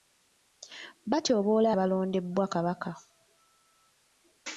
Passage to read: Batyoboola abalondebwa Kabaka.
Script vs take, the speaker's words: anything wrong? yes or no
no